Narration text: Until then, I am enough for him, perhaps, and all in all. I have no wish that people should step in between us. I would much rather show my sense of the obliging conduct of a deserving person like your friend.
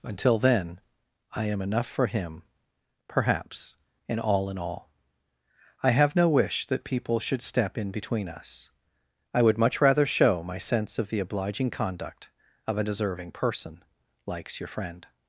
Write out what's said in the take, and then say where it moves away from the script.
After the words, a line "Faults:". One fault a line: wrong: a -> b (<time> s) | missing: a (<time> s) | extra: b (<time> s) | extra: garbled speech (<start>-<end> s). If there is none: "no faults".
Until then, I am enough for him, perhaps, and all in all. I have no wish that people should step in between us. I would much rather show my sense of the obliging conduct of a deserving person likes your friend.
Faults:
wrong: like -> likes (14.3 s)